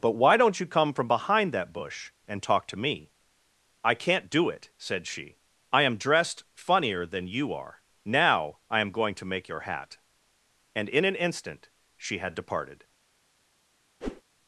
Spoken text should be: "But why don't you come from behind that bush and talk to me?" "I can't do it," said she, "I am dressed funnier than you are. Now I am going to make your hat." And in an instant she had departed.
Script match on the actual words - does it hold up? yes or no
yes